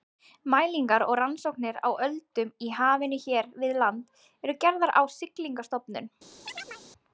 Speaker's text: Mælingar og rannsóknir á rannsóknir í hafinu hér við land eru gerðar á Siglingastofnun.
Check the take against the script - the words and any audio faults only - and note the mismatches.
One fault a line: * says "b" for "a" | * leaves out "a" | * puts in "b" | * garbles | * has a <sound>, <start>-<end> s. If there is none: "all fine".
* says "öldum" for "rannsóknir"
* has a chirp, 6.4-6.8 s